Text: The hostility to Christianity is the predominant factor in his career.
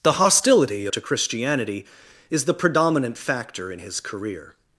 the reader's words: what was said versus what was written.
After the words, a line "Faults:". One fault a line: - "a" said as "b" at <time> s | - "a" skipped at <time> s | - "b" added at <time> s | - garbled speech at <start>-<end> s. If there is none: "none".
The hostility to Christianity is the predominant factor in his career.
Faults:
none